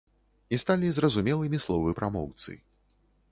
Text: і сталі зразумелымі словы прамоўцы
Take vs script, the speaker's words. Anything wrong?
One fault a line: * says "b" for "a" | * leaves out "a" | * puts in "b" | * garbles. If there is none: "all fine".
all fine